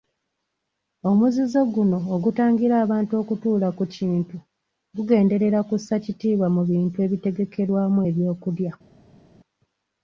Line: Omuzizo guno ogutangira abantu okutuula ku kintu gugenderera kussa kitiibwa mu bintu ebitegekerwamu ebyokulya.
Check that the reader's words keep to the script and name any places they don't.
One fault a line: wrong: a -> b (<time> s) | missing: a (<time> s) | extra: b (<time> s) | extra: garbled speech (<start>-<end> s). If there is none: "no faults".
no faults